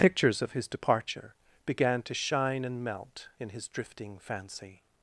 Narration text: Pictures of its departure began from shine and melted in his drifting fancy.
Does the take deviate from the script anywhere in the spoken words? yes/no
yes